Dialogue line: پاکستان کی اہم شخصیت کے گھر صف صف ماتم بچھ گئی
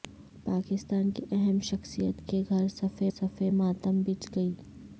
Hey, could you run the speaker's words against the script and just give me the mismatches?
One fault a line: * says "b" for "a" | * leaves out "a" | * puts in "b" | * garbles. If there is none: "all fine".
all fine